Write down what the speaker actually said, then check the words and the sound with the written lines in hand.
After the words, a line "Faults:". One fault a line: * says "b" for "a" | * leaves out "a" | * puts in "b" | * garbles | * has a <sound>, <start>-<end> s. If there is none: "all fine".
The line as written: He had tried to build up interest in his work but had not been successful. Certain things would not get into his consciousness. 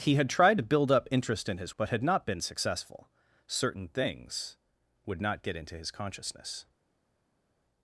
He had tried to build up interest in his but had not been successful. Certain things would not get into his consciousness.
Faults:
* leaves out "work"